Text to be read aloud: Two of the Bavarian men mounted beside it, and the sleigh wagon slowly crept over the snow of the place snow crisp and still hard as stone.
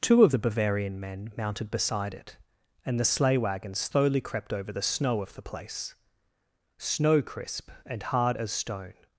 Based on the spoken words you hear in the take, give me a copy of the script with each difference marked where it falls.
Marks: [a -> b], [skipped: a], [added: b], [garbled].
Two of the Bavarian men mounted beside it, and the sleigh wagon slowly crept over the snow of the place snow crisp and [skipped: still] hard as stone.